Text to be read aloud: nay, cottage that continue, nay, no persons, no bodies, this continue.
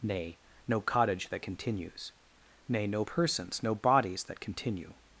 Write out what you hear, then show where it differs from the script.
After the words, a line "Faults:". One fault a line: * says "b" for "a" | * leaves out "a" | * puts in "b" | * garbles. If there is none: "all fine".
nay, no cottage that continues, nay, no persons, no bodies, that continue.
Faults:
* puts in "no"
* says "continues" for "continue"
* says "that" for "this"